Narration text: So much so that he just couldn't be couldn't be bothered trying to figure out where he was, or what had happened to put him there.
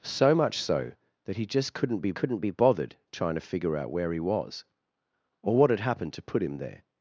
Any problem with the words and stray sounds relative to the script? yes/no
no